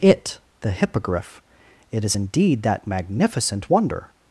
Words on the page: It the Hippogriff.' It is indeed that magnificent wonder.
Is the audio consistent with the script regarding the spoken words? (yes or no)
yes